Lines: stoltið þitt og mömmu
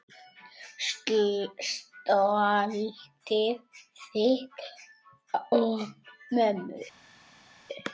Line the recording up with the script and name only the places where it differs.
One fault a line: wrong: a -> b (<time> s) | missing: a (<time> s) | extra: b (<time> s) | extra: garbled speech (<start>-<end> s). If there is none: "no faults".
no faults